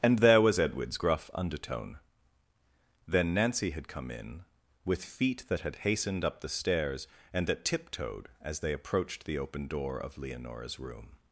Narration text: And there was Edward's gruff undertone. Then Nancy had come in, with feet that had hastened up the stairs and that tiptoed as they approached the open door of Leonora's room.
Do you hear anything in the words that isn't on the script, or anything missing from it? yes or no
no